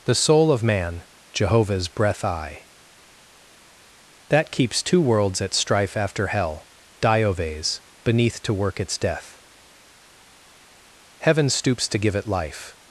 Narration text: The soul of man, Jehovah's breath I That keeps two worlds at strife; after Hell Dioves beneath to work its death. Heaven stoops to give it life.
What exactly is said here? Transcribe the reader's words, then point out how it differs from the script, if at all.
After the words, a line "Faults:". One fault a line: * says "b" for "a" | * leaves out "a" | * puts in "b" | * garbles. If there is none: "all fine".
The soul of man, Jehovah's breath I That keeps two worlds at strife; after Hell Dioves beneath to work its death. Heaven stoops to give it life.
Faults:
all fine